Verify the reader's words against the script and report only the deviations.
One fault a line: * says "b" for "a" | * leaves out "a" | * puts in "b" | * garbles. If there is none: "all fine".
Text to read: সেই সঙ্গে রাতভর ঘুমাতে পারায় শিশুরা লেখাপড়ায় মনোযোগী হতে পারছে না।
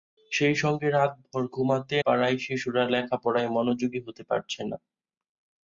all fine